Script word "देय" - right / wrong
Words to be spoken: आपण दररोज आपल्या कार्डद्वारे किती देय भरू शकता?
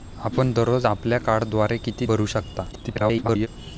wrong